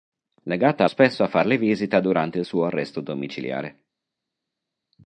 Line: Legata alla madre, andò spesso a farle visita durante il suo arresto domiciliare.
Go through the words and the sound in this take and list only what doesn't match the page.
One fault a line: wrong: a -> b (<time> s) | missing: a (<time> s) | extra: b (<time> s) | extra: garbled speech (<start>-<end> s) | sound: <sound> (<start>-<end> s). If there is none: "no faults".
missing: alla madre andò (0.8 s)